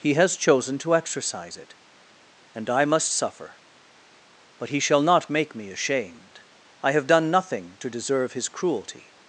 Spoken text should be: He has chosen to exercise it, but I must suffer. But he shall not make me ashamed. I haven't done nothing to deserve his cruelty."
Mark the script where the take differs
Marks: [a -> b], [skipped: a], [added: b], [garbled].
He has chosen to exercise it, [but -> and] I must suffer. But he shall not make me ashamed. I [haven't -> have] done nothing to deserve his cruelty."